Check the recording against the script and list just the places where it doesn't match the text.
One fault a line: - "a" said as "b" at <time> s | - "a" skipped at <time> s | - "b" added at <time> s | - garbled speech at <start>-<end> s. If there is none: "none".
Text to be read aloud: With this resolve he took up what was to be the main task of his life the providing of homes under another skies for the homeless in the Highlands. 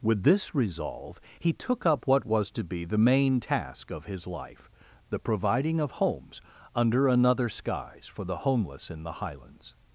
none